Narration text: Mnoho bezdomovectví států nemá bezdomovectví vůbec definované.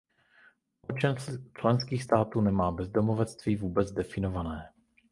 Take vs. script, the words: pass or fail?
fail